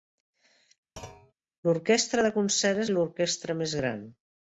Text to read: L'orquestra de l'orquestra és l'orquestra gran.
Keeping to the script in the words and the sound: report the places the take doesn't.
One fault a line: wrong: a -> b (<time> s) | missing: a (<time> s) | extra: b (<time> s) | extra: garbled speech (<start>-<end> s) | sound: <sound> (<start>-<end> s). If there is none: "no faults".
sound: thud (1.0-1.3 s)
wrong: l'orquestra -> concert (2.4 s)
extra: més (3.6 s)